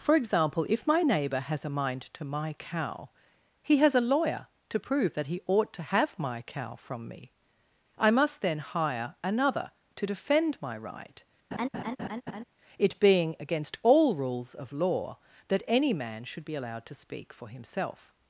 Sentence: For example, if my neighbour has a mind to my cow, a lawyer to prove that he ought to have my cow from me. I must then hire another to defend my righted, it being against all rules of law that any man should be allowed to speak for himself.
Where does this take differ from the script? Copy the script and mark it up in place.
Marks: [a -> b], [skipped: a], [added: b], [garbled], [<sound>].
For example, if my neighbour has a mind to my cow, [added: he has] a lawyer to prove that he ought to have my cow from me. I must then hire another to defend my [righted, -> right] [laugh] it being against all rules of law that any man should be allowed to speak for himself.